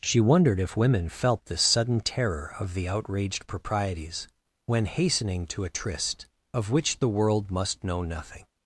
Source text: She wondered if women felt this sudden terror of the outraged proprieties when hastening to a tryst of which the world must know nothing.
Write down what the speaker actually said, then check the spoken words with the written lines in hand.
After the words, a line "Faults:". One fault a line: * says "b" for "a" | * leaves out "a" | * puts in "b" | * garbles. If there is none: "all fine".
She wondered if women felt this sudden terror of the outraged proprieties when hastening to a tryst of which the world must know nothing.
Faults:
all fine